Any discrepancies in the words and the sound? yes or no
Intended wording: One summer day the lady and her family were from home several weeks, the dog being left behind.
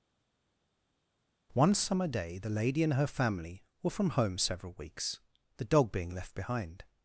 no